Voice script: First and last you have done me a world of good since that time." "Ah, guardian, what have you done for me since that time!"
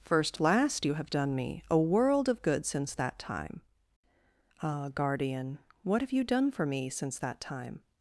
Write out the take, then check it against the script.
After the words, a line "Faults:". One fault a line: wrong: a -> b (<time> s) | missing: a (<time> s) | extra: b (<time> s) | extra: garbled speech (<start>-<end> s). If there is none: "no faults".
First last you have done me a world of good since that time." "Ah, guardian, what have you done for me since that time!"
Faults:
missing: and (0.4 s)